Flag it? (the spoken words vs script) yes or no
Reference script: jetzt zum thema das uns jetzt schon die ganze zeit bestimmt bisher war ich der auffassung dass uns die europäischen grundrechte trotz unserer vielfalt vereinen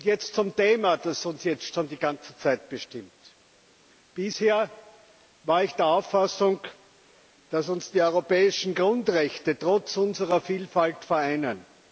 no